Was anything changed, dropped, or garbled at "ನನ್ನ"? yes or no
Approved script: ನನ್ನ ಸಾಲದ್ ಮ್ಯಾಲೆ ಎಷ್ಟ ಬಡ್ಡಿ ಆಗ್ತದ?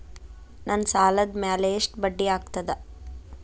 no